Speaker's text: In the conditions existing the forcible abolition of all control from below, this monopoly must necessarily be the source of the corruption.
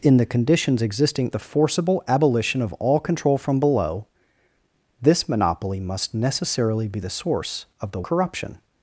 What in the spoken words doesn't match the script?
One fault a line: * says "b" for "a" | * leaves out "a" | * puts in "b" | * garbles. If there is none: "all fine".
all fine